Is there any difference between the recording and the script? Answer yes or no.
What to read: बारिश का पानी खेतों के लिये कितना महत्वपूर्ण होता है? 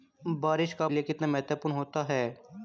yes